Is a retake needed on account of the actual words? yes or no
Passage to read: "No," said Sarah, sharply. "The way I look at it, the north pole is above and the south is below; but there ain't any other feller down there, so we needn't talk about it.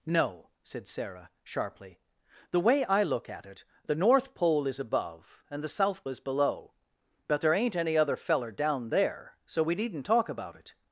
no